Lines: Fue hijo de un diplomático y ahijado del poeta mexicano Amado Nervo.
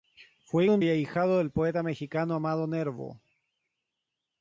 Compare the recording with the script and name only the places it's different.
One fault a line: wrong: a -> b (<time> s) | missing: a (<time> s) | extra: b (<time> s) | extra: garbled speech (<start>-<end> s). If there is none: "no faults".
missing: hijo (0.7 s)
missing: diplomático (0.8 s)